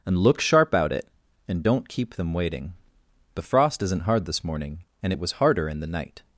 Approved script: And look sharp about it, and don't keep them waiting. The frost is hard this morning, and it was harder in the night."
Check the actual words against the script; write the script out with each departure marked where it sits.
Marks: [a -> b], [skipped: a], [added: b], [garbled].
And look sharp [about -> out] it, and don't keep them waiting. The frost [is -> isn't] hard this morning, and it was harder in the night."